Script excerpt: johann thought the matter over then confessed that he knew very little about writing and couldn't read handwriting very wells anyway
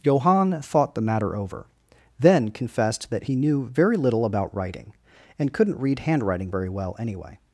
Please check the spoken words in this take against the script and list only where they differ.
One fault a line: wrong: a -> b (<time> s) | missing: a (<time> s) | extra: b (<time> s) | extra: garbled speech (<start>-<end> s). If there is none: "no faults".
wrong: wells -> well (6.7 s)